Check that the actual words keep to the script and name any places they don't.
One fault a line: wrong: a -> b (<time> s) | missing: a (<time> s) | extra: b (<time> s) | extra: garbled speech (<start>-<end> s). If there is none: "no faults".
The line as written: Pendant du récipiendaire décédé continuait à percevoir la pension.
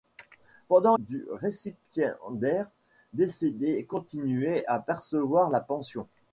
no faults